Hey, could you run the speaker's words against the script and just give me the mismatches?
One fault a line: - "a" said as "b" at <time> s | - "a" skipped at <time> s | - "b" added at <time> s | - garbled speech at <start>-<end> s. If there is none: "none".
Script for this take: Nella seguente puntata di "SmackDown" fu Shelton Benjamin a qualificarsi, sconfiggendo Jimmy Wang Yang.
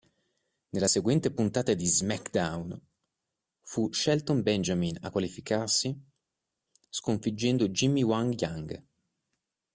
none